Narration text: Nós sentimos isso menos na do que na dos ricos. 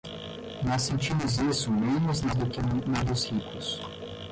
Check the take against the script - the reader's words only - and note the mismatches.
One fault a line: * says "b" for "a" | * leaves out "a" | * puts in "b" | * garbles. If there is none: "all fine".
all fine